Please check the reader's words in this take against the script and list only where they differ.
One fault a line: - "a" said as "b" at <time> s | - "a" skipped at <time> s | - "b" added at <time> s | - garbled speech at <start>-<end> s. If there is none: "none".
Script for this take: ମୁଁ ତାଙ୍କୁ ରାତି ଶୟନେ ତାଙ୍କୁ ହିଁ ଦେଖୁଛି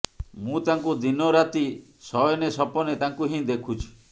- "ଦିନ" added at 1.0 s
- "ସପନେ" added at 2.6 s